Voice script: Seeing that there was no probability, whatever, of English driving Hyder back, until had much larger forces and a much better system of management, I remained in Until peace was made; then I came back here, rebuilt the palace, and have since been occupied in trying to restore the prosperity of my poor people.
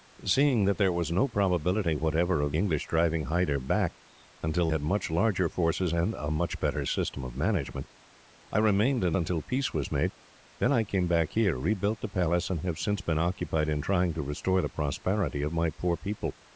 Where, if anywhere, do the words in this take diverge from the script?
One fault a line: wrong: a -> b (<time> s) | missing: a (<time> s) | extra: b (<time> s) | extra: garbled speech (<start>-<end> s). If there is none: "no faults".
no faults